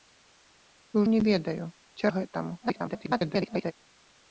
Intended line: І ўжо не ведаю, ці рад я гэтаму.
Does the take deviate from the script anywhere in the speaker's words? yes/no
yes